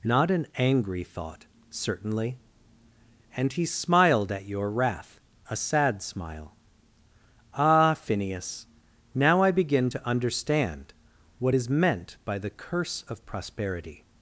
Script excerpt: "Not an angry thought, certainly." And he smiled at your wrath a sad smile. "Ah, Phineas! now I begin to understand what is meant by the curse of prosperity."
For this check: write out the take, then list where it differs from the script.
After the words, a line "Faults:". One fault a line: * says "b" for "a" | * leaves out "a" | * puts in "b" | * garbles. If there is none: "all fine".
"Not an angry thought, certainly." And he smiled at your wrath a sad smile. "Ah, Phineas! now I begin to understand what is meant by the curse of prosperity."
Faults:
all fine